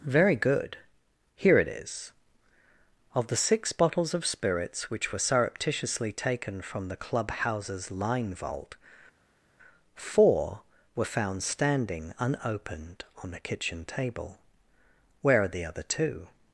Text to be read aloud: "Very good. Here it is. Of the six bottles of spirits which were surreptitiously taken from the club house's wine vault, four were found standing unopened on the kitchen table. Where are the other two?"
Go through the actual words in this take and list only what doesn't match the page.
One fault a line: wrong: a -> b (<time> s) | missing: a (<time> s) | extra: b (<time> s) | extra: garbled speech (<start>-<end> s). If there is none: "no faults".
wrong: wine -> line (7.9 s)